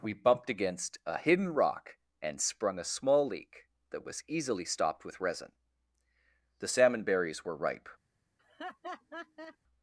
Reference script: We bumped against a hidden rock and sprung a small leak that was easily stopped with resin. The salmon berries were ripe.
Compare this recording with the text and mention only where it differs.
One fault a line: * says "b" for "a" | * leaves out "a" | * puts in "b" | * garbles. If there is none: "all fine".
all fine